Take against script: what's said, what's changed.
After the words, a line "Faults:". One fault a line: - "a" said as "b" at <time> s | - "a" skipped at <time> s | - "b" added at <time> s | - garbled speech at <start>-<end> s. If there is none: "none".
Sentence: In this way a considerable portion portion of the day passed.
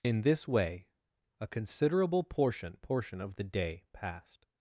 In this way a considerable portion portion of the day passed.
Faults:
none